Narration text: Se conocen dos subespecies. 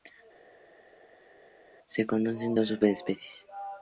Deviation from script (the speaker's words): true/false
false